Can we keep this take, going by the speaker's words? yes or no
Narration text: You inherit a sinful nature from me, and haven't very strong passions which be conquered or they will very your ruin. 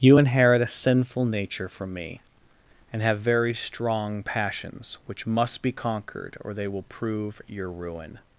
no